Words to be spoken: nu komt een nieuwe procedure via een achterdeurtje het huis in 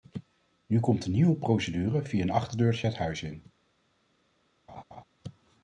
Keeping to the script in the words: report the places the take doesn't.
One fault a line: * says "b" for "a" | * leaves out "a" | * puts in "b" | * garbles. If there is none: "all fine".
all fine